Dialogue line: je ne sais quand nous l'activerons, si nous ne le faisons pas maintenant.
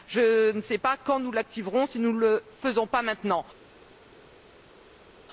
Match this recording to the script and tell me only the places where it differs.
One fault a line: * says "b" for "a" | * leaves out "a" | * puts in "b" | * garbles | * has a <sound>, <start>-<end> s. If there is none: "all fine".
* puts in "pas"